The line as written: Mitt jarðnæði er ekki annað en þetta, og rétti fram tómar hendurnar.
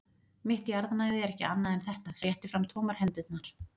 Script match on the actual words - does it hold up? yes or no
yes